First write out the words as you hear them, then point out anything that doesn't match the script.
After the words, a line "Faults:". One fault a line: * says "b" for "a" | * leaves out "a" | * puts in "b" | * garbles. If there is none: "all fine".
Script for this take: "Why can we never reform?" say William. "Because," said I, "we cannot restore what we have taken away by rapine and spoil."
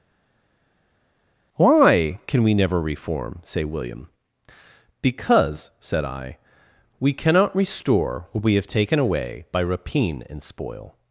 "Why can we never reform?" say William. "Because," said I, "we cannot restore what we have taken away by rapine and spoil."
Faults:
all fine